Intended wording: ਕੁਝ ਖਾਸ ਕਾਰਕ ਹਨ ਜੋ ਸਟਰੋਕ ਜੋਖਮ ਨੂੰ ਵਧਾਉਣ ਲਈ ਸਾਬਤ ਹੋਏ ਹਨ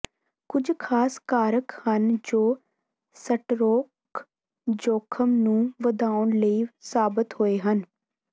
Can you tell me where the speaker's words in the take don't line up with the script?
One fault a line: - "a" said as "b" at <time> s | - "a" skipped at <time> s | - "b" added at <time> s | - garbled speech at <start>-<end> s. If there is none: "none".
none